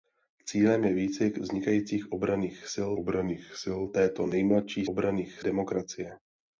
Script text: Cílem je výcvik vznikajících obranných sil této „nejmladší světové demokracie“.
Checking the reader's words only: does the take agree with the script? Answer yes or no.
no